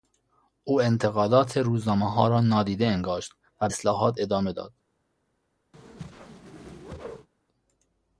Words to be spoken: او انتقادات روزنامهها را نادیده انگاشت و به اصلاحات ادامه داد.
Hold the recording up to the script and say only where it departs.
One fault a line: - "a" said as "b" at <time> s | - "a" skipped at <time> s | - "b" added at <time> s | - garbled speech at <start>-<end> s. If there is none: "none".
- "به" skipped at 3.7 s